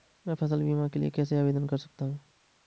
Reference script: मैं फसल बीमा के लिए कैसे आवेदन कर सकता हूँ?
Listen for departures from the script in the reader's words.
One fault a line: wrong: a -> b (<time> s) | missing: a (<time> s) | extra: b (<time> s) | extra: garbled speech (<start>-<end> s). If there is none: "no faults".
no faults